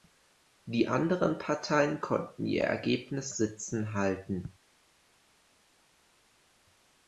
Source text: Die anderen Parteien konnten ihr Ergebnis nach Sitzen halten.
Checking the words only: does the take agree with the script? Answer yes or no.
no